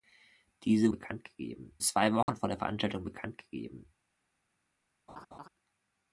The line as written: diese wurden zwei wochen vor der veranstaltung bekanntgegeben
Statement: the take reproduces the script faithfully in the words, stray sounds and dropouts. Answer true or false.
false